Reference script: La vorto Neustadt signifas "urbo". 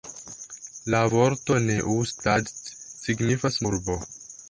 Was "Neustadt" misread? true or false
false